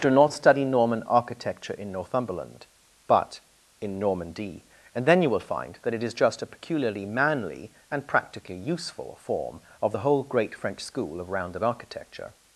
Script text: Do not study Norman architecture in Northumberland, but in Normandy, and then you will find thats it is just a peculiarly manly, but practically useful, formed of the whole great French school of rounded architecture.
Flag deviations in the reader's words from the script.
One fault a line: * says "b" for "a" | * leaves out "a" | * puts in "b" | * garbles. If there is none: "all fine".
* says "that" for "thats"
* says "and" for "but"
* says "form" for "formed"